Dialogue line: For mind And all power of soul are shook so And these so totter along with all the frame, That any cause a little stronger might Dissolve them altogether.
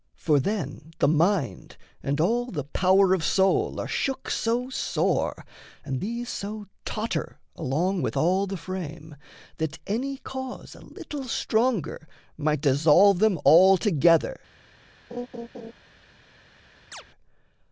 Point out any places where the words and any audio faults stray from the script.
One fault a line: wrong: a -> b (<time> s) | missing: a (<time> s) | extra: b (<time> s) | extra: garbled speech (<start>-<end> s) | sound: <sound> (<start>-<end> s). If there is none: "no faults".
extra: then the (0.4 s)
extra: the (2.5 s)
extra: sore (4.7 s)
sound: laugh (15.1-15.7 s)
sound: chirp (16.9-17.0 s)